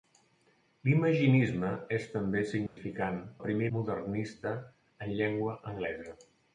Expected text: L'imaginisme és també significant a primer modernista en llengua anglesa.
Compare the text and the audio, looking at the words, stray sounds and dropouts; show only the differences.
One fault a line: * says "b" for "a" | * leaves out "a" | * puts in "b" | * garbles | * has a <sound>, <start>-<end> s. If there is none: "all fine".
* has a dropout, 2.7-2.8 s